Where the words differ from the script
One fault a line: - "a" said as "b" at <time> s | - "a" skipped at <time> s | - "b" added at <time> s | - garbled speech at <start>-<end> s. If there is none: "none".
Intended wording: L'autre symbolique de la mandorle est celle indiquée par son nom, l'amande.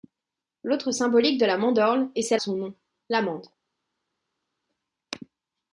- "indiquée par" skipped at 2.4 s